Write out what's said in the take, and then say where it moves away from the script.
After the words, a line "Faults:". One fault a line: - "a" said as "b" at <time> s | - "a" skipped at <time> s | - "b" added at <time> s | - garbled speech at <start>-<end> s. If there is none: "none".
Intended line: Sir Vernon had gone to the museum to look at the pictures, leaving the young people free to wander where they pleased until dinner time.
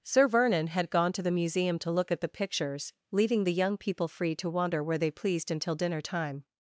Sir Vernon had gone to the museum to look at the pictures, leaving the young people free to wander where they pleased until dinner time.
Faults:
none